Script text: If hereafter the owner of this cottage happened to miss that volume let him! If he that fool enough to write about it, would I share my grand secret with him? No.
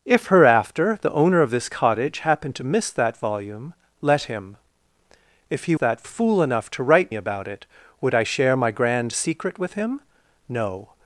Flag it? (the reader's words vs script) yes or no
no